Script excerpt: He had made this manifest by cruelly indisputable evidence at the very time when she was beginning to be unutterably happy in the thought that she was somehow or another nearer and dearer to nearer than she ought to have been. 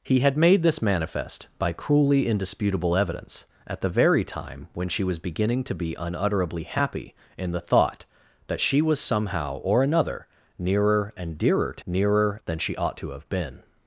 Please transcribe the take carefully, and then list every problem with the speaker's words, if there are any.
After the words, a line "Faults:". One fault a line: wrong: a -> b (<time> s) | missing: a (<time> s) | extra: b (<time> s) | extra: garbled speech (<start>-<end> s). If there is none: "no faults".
He had made this manifest by cruelly indisputable evidence at the very time when she was beginning to be unutterably happy in the thought that she was somehow or another nearer and dearer to nearer than she ought to have been.
Faults:
no faults